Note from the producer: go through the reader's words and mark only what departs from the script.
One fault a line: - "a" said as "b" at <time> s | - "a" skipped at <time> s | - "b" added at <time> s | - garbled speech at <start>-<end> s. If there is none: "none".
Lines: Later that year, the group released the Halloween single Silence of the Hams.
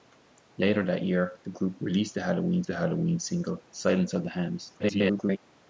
- "the Halloween" added at 2.7 s
- garbled speech at 4.8-5.4 s